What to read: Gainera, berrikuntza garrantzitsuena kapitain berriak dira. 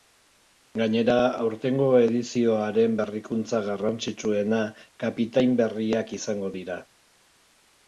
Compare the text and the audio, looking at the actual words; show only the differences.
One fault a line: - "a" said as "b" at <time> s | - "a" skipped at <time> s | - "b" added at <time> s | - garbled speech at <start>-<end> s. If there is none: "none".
- "aurtengo edizioaren" added at 1.4 s
- "izango" added at 6.2 s